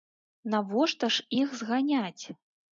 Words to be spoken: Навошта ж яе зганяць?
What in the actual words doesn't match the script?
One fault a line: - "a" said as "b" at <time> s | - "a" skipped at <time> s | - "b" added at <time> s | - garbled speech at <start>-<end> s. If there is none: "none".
- "яе" said as "іх" at 1.4 s